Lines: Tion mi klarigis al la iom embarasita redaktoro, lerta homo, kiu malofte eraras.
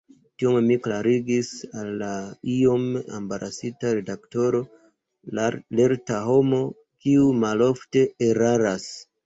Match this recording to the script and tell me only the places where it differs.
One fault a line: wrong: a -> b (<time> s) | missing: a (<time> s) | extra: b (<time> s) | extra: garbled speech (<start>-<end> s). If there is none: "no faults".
no faults